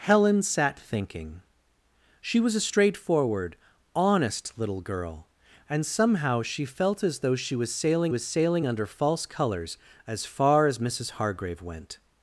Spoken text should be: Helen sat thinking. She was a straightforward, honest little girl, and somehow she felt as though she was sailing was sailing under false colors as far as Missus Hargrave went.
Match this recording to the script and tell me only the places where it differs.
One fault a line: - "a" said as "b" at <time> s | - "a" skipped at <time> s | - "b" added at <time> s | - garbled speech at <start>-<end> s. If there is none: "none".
none